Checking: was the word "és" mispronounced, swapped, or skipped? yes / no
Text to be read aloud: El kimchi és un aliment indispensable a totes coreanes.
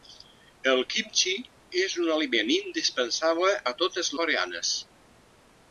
no